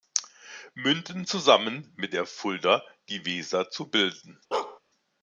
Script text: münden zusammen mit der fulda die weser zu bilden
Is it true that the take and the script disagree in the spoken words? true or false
false